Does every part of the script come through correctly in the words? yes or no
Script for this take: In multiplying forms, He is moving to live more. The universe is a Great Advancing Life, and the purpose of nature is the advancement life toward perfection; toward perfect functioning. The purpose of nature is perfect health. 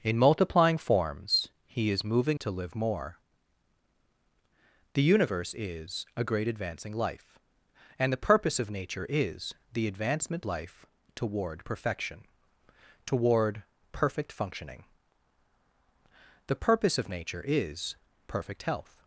yes